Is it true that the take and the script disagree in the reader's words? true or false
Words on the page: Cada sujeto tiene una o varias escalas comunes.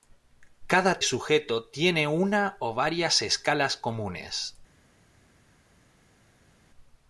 false